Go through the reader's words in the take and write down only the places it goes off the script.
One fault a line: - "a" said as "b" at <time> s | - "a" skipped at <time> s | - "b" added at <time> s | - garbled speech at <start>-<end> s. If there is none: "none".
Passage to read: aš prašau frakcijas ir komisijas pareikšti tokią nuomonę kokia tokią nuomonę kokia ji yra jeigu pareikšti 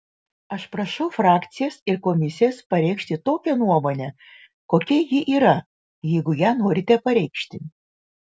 - "tokią nuomonę kokia" skipped at 5.0 s
- "ją norite" added at 6.4 s